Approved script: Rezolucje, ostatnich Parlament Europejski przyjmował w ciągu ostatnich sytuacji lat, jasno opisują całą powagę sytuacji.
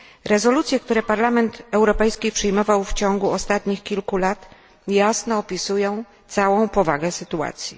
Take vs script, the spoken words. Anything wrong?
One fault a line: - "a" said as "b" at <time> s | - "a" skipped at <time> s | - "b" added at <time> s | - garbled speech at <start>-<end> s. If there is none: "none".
- "ostatnich" said as "które" at 0.8 s
- "sytuacji" said as "kilku" at 3.8 s